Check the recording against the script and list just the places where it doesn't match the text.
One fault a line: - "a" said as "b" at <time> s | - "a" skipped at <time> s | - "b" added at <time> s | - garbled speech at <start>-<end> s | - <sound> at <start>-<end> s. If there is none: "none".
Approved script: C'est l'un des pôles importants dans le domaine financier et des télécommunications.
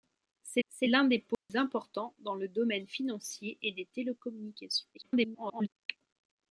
- "c'est" added at 0.7 s
- dropout at 1.3-1.5 s
- garbled speech at 4.9-5.7 s